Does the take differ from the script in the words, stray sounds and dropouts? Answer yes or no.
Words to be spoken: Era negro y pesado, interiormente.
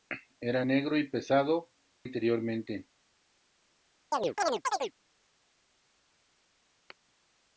yes